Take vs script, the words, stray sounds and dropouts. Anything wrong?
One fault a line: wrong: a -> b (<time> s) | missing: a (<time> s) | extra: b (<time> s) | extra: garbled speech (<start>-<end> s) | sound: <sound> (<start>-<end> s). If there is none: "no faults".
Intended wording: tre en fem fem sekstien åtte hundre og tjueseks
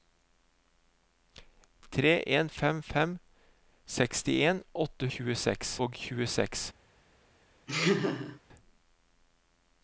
wrong: hundre -> tjueseks (5.1 s)
sound: laugh (7.7-8.4 s)